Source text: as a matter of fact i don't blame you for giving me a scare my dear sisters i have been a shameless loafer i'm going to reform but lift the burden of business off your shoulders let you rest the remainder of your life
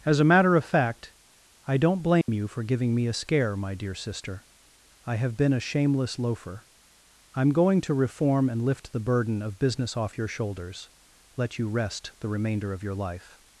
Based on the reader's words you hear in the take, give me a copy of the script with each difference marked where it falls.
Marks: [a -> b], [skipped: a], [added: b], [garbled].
as a matter of fact i don't blame you for giving me a scare my dear [sisters -> sister] i have been a shameless loafer i'm going to reform [but -> and] lift the burden of business off your shoulders let you rest the remainder of your life